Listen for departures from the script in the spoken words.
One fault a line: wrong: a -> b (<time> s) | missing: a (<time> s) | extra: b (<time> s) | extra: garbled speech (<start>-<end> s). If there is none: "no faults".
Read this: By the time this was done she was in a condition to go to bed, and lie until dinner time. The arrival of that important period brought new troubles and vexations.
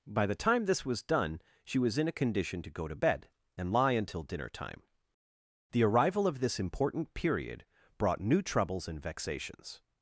wrong: that -> this (6.4 s)